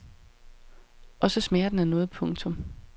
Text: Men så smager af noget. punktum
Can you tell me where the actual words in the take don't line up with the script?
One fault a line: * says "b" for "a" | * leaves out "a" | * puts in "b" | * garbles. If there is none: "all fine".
* says "Og" for "Men"
* puts in "den"